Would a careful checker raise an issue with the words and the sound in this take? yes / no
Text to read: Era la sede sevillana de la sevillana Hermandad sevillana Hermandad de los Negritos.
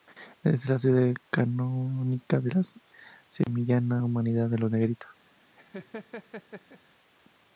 yes